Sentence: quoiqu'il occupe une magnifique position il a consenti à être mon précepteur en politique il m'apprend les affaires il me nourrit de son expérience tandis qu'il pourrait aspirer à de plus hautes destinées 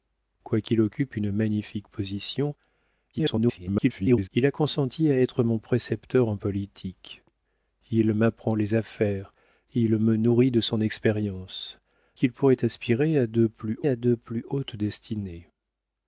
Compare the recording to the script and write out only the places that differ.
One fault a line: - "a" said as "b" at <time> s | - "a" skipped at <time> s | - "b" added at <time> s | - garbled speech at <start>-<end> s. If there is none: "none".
- garbled speech at 3.1-4.3 s
- "tandis" skipped at 11.8 s
- "à de plus" added at 13.9 s